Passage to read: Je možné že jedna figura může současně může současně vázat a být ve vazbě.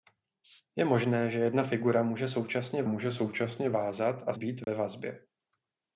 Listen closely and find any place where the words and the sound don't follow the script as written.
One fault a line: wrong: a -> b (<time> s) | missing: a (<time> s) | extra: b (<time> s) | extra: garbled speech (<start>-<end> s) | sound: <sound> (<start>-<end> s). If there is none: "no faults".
sound: dropout (4.6-4.7 s)